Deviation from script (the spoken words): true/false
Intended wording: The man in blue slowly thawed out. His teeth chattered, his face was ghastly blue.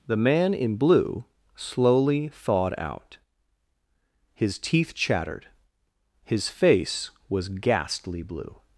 false